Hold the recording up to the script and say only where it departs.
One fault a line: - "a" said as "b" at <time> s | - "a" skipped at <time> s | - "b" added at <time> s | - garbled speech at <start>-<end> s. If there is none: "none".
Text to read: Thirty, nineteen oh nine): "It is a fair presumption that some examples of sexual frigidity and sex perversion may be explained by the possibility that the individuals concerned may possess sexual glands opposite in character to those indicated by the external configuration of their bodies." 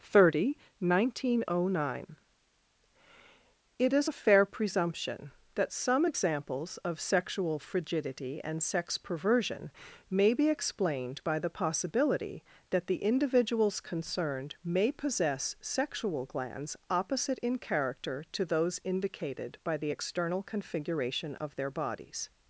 none